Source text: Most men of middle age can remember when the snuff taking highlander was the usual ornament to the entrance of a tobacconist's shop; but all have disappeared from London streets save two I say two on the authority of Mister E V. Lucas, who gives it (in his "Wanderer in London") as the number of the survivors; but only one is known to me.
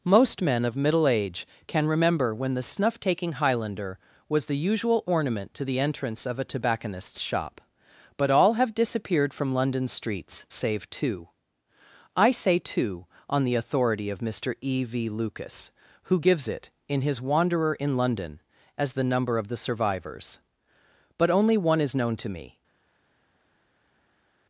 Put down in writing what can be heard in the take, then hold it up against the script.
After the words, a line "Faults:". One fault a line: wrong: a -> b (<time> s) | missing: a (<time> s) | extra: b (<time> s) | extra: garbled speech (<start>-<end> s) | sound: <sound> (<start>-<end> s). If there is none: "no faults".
Most men of middle age can remember when the snuff taking highlander was the usual ornament to the entrance of a tobacconist's shop; but all have disappeared from London streets save two I say two on the authority of Mister E V. Lucas, who gives it (in his "Wanderer in London") as the number of the survivors; but only one is known to me.
Faults:
no faults